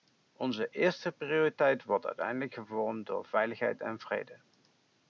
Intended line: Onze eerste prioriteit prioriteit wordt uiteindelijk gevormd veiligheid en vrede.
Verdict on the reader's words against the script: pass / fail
fail